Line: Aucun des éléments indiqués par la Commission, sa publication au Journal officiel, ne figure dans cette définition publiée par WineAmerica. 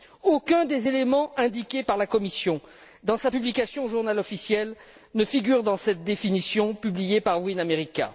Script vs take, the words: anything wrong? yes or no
yes